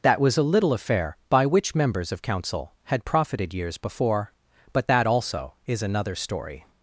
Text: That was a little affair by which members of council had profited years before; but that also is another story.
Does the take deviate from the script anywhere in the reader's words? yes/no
no